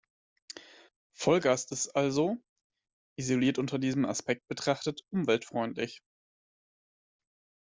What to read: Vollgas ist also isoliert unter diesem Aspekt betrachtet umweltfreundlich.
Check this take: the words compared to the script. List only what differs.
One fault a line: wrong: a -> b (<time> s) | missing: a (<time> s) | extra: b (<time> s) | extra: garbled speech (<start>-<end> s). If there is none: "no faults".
no faults